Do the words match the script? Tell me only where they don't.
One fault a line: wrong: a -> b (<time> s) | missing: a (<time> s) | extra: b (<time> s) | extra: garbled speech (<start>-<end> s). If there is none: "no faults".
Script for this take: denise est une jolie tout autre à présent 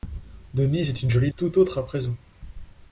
no faults